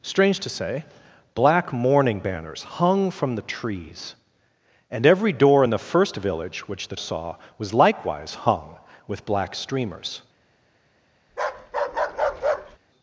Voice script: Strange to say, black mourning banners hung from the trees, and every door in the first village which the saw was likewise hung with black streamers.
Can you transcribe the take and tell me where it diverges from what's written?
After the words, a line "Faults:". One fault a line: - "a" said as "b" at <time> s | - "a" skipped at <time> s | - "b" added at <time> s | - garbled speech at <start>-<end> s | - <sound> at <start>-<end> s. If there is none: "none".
Strange to say, black mourning banners hung from the trees, and every door in the first village which the saw was likewise hung with black streamers.
Faults:
- bark at 11.3-12.8 s